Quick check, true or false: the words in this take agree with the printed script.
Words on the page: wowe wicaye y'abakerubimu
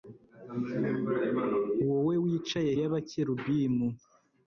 true